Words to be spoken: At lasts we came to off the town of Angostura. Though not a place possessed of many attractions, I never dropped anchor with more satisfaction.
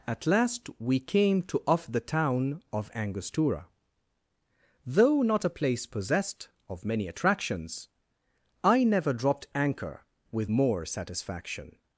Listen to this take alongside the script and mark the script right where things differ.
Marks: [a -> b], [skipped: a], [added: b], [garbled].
At [lasts -> last] we came to off the town of Angostura. Though not a place possessed of many attractions, I never dropped anchor with more satisfaction.